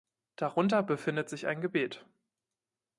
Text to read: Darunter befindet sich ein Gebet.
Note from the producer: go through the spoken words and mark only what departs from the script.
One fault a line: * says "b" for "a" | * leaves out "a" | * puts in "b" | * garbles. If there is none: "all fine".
all fine